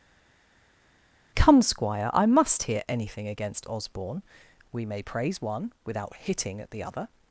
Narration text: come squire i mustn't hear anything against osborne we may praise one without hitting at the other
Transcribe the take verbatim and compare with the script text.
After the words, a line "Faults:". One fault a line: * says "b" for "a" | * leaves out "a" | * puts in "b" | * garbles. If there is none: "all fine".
come squire i must hear anything against osborne we may praise one without hitting at the other
Faults:
* says "must" for "mustn't"